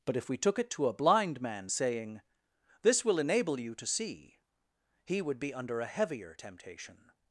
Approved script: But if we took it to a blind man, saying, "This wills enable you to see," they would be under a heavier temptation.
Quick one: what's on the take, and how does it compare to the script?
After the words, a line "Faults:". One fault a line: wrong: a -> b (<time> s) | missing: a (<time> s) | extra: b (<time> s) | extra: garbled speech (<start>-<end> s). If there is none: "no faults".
But if we took it to a blind man, saying, "This will enable you to see," he would be under a heavier temptation.
Faults:
wrong: wills -> will (3.0 s)
wrong: they -> he (5.0 s)